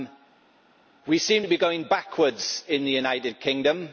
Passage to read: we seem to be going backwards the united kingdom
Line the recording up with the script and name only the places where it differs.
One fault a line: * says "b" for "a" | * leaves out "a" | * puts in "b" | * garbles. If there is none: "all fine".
* puts in "in"